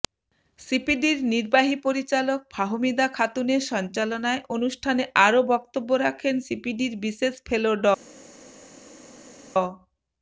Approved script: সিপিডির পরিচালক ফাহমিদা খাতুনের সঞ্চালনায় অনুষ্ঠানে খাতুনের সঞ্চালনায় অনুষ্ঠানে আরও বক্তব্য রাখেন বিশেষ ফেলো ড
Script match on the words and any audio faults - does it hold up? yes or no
no